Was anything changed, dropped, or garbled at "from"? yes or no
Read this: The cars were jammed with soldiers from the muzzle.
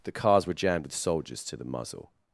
yes